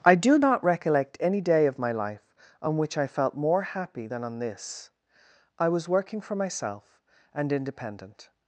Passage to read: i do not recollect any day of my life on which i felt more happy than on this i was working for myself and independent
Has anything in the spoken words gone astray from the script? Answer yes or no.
no